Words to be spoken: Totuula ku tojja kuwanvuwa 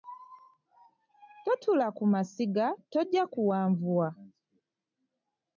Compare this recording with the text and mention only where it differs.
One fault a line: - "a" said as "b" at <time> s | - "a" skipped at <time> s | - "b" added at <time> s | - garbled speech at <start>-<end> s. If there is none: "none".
- "masiga" added at 2.1 s